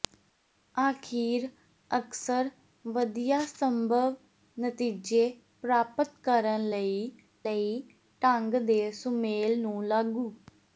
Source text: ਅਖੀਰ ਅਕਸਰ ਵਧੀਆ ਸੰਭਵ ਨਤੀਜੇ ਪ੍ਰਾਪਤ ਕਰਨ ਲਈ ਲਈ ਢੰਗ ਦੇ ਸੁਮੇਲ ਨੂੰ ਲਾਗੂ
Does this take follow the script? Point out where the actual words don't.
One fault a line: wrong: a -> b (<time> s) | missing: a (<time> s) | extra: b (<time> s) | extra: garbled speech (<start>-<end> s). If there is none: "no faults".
no faults